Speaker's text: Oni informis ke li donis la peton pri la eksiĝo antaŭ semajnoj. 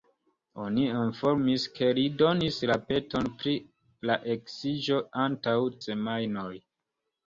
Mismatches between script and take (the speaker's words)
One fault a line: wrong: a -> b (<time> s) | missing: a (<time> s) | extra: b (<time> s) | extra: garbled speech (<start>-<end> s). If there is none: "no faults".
no faults